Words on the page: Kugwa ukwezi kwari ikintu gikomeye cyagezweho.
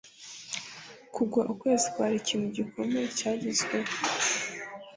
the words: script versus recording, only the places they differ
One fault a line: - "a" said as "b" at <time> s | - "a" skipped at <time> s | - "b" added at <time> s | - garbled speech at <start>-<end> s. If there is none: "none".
none